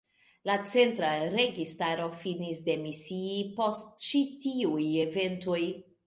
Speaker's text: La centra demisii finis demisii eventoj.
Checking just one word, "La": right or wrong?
right